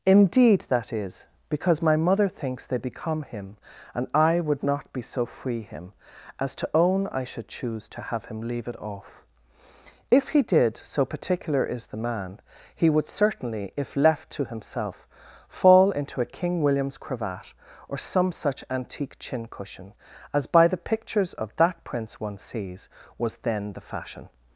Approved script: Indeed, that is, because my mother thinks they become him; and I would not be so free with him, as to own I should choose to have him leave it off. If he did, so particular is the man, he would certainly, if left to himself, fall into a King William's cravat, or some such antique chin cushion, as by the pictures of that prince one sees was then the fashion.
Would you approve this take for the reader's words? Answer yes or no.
no